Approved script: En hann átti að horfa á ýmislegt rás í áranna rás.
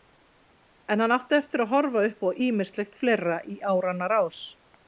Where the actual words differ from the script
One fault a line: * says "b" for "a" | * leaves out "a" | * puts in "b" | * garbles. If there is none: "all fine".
* puts in "eftir"
* puts in "upp"
* says "fleira" for "rás"